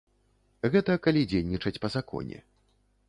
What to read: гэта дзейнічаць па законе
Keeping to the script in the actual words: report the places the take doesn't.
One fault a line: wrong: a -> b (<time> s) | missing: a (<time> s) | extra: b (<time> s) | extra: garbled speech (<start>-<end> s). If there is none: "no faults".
extra: калі (1.1 s)